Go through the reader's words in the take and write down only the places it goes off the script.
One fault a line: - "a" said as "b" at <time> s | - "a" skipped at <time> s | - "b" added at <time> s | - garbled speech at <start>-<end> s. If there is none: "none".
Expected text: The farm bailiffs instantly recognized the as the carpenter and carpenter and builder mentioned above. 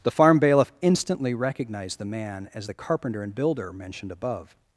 - "bailiffs" said as "bailiff" at 0.4 s
- "man" added at 2.0 s
- "carpenter and" skipped at 3.3 s